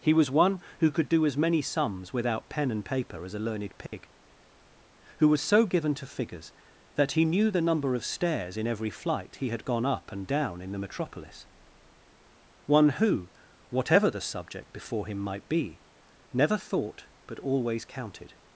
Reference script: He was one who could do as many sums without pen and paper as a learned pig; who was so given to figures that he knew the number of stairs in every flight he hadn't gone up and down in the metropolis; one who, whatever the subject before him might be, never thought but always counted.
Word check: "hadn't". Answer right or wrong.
wrong